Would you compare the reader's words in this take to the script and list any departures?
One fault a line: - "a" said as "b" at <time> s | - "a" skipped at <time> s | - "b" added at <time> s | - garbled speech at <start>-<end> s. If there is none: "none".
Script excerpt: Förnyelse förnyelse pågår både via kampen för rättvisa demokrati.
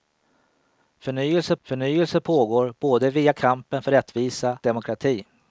none